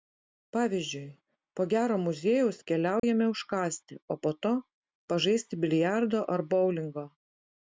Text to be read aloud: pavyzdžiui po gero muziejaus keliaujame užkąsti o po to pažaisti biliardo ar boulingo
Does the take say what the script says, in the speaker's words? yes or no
yes